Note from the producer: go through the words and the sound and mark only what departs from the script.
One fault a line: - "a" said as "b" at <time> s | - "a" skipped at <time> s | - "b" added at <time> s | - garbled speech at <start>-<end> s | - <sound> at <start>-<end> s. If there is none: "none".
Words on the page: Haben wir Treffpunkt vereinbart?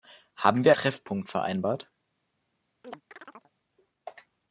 - chirp at 2.8-3.5 s